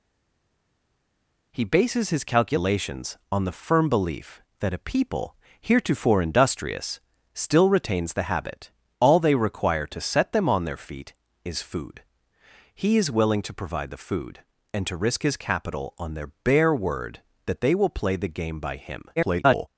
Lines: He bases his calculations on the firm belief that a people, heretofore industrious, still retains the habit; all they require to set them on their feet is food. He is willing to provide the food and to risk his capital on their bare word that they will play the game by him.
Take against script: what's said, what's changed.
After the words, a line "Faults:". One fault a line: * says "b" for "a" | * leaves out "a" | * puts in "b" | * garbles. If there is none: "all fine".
He bases his calculations on the firm belief that a people, heretofore industrious, still retains the habit; all they require to set them on their feet is food. He is willing to provide the food and to risk his capital on their bare word that they will play the game by him. [garbled]
Faults:
* garbles